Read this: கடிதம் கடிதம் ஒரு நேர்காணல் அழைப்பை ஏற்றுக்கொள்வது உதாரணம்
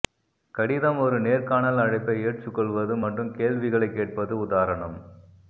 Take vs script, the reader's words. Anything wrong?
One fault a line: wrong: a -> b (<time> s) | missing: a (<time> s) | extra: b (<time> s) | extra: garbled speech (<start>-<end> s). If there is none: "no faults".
missing: கடிதம் (1.0 s)
extra: மற்றும் கேள்விகளைக் கேட்பது (3.0 s)